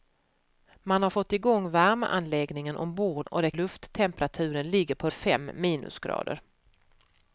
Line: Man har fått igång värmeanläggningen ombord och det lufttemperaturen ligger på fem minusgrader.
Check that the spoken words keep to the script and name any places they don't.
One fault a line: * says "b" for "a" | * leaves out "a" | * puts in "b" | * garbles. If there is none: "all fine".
all fine